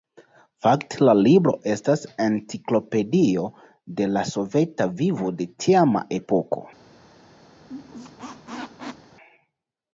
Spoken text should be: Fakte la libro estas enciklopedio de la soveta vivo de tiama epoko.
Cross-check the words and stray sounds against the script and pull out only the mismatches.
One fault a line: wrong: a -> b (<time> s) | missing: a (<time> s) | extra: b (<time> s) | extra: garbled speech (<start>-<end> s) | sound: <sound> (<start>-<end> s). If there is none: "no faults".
sound: squeak (7.6-9.1 s)